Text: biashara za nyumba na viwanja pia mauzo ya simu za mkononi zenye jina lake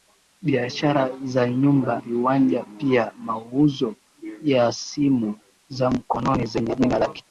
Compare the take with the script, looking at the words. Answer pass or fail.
fail